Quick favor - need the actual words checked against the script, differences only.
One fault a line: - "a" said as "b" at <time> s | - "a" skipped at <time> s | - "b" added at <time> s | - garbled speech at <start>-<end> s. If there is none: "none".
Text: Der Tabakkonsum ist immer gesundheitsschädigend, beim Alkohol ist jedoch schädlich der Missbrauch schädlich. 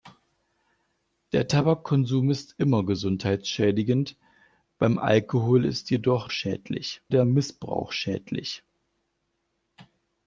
none